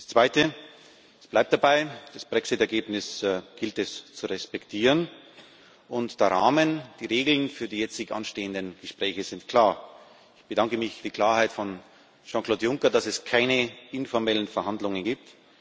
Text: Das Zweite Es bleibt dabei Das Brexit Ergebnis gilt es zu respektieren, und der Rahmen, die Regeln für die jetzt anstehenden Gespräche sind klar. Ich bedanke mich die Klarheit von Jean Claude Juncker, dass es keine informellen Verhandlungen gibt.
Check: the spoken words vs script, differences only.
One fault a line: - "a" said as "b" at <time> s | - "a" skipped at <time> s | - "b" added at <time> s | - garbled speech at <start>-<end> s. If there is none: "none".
none